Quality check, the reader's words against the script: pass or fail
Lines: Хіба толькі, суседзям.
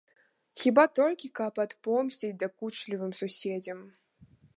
fail